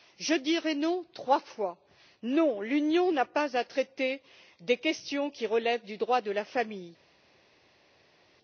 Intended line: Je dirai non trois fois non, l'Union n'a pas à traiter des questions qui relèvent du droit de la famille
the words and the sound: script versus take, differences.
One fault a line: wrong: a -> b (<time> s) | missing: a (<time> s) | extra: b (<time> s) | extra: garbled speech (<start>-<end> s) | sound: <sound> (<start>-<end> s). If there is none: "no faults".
no faults